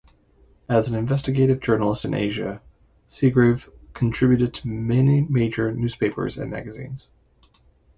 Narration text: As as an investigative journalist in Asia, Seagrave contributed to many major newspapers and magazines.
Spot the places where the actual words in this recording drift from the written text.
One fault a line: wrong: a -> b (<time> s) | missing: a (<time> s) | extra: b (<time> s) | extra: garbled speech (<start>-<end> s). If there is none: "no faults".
missing: as (0.9 s)